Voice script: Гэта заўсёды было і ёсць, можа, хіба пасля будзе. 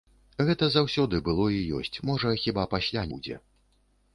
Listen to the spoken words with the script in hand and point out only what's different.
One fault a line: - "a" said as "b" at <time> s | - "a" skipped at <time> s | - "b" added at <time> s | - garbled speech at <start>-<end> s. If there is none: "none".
none